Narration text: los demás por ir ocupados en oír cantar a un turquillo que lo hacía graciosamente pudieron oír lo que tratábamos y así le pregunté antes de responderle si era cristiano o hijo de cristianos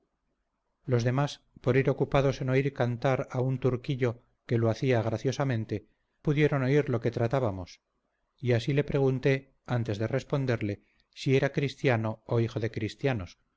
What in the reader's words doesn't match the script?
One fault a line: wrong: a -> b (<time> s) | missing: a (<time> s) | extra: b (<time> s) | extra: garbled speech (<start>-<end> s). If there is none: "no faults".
no faults